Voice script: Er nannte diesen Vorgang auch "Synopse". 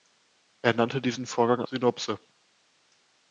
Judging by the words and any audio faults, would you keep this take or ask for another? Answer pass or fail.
fail